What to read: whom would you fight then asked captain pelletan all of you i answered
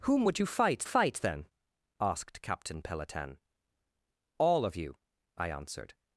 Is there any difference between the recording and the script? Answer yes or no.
yes